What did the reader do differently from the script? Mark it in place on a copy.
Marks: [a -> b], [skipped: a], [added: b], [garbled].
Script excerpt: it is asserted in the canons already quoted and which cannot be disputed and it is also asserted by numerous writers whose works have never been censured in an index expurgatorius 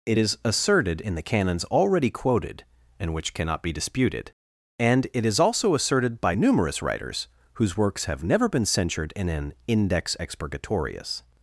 it is asserted in the canons already quoted and which cannot be disputed and it is also asserted by numerous writers whose works have never been censured in an index expurgatorius